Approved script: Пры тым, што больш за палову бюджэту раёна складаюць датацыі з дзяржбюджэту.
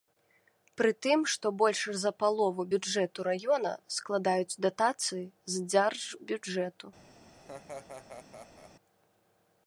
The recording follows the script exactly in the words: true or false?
true